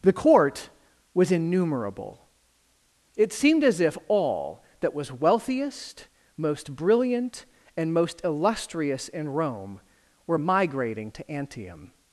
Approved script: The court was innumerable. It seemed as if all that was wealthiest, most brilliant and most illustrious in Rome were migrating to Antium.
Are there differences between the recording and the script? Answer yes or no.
no